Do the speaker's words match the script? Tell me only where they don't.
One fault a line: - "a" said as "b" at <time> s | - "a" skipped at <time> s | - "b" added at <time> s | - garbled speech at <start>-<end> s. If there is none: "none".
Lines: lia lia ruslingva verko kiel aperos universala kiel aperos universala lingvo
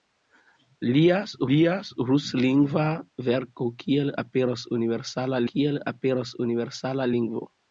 none